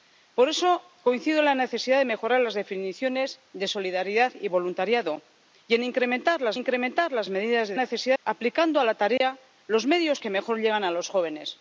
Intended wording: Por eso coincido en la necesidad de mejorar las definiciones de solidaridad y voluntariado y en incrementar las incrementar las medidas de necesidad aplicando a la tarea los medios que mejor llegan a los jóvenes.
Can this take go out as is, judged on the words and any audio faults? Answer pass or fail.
fail